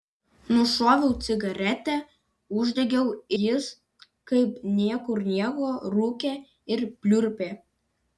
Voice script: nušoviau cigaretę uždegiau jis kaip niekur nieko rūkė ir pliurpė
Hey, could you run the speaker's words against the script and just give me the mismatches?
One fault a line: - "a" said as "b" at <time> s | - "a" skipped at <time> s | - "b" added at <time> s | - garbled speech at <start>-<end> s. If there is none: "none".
none